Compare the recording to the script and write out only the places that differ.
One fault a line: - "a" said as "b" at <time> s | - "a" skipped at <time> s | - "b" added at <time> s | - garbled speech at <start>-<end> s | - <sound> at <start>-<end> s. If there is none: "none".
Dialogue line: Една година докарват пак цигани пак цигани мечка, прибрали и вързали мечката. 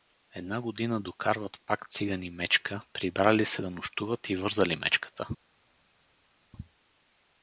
- "пак цигани мечка прибрали" said as "мечка прибрали се да нощуват" at 2.3 s